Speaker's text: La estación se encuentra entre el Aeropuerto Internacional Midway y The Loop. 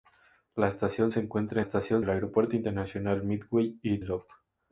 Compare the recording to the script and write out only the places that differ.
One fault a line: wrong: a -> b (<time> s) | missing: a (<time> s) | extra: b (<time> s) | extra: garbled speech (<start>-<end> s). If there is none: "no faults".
wrong: entre -> estación (1.6 s)
missing: The (4.0 s)